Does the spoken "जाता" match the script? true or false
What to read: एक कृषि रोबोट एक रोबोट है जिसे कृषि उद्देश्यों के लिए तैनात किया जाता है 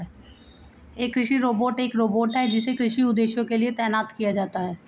true